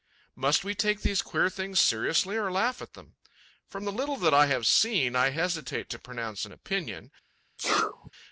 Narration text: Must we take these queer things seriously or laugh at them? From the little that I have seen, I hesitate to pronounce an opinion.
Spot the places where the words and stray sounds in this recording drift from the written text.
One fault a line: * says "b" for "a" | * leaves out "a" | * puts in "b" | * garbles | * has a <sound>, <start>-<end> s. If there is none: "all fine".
* has a sneeze, 7.6-8.1 s